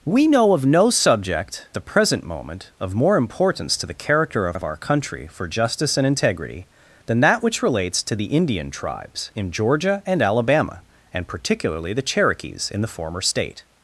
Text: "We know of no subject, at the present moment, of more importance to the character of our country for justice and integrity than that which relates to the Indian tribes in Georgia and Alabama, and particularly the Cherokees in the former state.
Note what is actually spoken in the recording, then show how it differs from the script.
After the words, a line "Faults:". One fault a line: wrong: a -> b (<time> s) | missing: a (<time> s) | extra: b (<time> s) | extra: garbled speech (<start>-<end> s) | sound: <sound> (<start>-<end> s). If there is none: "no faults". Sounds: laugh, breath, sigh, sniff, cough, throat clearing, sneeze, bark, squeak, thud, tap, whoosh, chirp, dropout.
"We know of no subject, the present moment, of more importance to the character of of our country for justice and integrity than that which relates to the Indian tribes in Georgia and Alabama, and particularly the Cherokees in the former state.
Faults:
missing: at (1.7 s)
extra: of (4.5 s)